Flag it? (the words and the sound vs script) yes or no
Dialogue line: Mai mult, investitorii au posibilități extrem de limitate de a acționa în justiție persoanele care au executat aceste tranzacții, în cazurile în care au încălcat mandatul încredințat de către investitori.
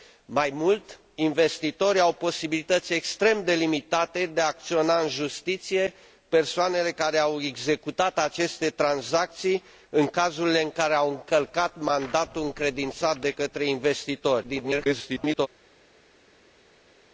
yes